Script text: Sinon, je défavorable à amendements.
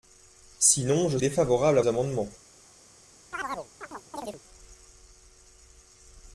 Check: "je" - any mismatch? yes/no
no